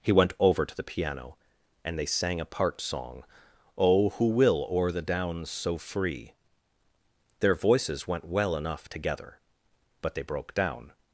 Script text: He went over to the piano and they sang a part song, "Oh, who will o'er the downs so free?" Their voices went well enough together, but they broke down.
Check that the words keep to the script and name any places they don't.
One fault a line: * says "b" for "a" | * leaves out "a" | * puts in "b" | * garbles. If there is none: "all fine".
all fine